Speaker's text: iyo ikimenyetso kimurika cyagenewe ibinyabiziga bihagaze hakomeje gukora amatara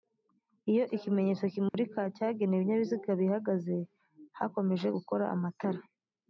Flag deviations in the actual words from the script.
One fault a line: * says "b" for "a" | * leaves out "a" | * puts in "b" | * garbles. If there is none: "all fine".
all fine